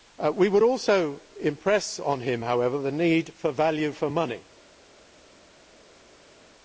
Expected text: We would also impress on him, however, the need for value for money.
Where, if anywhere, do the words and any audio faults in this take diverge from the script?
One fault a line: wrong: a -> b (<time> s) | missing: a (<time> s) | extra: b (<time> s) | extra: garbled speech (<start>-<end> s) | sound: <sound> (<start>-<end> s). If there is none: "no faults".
no faults